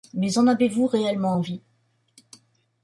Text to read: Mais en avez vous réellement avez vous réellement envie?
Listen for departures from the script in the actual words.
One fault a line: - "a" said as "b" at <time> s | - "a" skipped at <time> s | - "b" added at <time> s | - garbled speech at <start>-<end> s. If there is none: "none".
- "avez vous réellement" skipped at 1.4 s